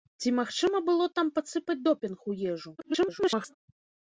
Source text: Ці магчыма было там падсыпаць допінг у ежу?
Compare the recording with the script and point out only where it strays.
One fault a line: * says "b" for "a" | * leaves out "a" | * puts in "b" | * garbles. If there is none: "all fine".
* garbles